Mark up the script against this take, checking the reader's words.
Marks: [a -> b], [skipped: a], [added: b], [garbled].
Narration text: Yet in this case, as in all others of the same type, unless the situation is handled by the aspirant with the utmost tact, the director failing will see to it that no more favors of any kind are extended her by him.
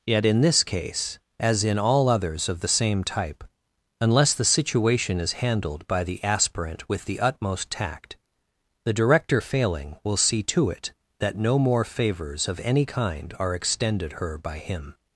Yet in this case, as in all others of the same type, unless the situation is handled by the aspirant with the utmost tact, the director failing will see to it that no more favors of any kind are extended her by him.